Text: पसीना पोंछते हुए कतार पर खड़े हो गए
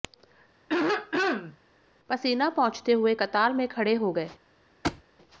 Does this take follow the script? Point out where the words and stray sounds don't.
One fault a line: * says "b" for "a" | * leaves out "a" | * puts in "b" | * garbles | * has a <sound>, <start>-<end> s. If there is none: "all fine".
* has a throat clearing, 0.7-1.6 s
* says "में" for "पर"
* has a thud, 4.8-5.0 s